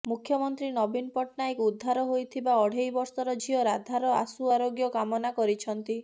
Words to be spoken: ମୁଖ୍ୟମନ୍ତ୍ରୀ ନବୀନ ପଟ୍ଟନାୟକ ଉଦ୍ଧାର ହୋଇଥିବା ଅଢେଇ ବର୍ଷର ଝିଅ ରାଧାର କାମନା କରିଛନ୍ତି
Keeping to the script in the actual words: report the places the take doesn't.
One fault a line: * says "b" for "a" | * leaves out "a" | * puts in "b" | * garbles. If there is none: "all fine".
* puts in "ଆଶୁ ଆରୋଗ୍ୟ"